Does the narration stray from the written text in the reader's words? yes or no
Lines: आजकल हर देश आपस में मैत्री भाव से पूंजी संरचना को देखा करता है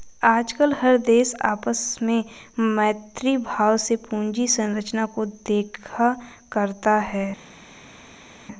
no